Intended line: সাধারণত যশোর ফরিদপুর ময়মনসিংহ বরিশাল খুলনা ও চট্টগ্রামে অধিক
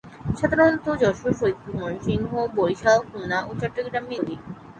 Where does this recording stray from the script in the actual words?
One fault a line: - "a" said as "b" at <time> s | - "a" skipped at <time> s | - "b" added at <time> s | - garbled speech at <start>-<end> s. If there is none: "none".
none